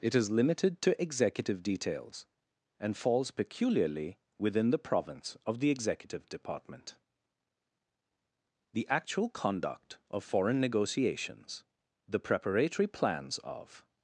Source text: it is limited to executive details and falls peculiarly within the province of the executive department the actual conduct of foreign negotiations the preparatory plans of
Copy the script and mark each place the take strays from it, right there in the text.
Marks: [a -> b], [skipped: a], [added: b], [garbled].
it is limited to executive details and falls peculiarly within the province of the executive department the actual conduct of foreign negotiations the preparatory plans of